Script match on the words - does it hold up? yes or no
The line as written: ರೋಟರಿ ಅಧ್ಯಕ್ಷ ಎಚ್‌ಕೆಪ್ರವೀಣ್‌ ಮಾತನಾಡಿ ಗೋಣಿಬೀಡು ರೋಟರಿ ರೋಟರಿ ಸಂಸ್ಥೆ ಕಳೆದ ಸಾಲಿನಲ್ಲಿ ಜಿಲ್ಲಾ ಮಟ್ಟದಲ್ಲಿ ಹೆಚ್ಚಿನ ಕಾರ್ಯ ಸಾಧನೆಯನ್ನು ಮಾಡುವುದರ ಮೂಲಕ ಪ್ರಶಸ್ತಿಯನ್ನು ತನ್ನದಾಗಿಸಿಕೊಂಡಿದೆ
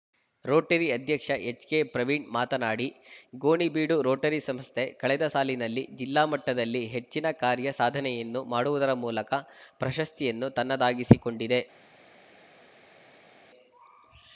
no